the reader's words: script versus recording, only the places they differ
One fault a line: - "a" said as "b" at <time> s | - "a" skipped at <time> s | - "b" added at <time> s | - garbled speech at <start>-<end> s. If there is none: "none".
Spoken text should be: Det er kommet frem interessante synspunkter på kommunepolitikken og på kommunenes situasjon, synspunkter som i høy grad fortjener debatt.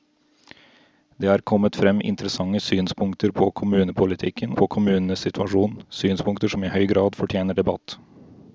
- "og" skipped at 4.6 s